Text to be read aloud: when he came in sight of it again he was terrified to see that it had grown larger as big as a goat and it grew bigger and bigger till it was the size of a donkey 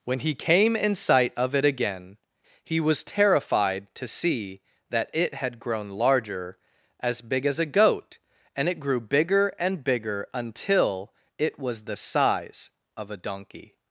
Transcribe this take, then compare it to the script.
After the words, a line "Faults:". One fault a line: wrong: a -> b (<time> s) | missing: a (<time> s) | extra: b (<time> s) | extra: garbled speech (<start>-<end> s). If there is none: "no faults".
when he came in sight of it again he was terrified to see that it had grown larger as big as a goat and it grew bigger and bigger until it was the size of a donkey
Faults:
wrong: till -> until (10.3 s)